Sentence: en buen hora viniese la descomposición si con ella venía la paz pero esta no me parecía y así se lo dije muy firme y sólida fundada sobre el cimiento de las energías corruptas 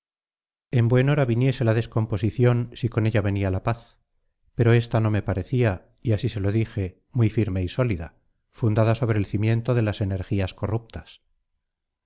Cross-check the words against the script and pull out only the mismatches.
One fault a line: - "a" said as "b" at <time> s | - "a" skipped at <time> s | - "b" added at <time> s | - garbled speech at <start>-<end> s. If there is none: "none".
none